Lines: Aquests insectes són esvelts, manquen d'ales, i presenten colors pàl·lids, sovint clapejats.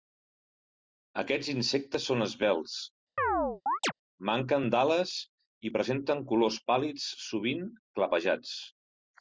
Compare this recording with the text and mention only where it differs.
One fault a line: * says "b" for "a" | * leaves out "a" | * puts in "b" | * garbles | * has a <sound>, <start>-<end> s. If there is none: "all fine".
* has a chirp, 3.2-3.9 s